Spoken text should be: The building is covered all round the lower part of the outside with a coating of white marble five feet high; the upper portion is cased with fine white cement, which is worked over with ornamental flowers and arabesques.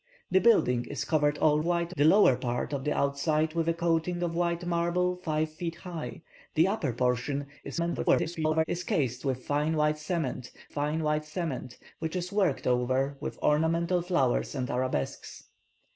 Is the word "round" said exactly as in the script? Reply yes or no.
no